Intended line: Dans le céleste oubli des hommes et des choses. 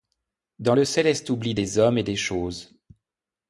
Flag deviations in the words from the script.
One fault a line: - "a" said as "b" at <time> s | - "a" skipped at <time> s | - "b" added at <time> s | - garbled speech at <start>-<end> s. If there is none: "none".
none